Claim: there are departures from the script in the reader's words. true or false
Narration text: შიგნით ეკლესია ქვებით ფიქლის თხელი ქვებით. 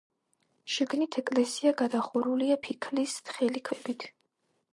true